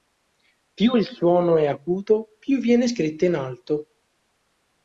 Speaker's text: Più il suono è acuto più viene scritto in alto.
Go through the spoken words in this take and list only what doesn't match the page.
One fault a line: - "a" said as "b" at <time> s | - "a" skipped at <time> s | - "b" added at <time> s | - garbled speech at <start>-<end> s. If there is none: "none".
none